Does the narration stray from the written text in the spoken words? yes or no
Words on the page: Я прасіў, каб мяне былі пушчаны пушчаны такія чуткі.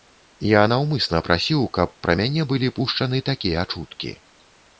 yes